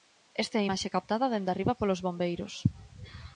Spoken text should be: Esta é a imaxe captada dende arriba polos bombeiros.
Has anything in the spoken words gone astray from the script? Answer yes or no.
no